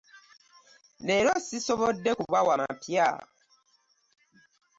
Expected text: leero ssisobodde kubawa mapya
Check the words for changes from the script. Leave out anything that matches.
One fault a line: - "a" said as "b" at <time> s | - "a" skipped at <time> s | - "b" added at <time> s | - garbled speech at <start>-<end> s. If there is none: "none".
none